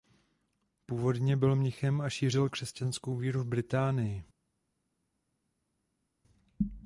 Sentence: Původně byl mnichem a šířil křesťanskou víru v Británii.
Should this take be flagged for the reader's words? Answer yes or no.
no